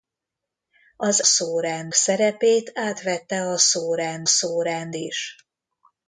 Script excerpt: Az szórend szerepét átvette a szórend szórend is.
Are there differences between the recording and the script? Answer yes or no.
no